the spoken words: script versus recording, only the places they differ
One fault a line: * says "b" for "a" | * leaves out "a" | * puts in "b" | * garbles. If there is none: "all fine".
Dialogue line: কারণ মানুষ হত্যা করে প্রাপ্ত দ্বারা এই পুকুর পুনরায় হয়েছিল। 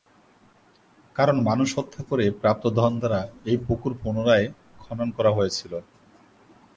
* puts in "ধন"
* puts in "খনন করা"